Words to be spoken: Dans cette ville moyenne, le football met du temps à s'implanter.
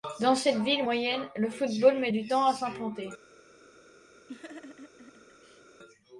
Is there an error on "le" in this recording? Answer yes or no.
no